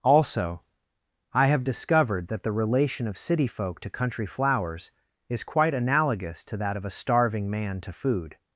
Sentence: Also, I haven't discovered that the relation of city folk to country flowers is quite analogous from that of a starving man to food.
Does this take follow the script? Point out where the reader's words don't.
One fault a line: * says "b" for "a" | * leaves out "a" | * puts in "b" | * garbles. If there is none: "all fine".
* says "have" for "haven't"
* says "to" for "from"